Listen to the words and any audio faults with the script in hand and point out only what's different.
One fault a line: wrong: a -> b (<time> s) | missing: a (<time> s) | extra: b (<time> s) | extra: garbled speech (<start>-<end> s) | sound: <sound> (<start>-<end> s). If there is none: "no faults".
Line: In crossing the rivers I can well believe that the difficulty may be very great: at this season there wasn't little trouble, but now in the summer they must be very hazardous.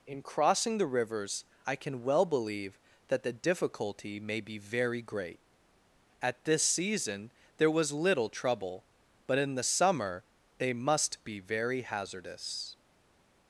wrong: wasn't -> was (7.7 s)
missing: now (9.4 s)